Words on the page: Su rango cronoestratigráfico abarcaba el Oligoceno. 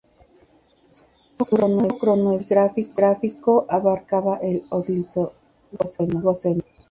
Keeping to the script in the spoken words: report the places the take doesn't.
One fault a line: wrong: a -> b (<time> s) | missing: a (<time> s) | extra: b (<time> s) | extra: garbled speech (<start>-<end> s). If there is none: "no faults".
no faults